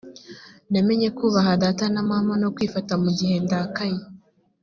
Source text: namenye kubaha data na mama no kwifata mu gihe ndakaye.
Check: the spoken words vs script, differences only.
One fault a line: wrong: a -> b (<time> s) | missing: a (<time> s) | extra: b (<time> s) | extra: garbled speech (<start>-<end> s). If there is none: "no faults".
no faults